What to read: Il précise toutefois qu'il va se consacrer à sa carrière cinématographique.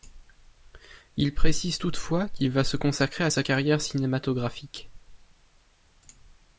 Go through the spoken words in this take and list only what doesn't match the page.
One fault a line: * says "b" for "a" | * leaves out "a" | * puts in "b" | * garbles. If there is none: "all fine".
all fine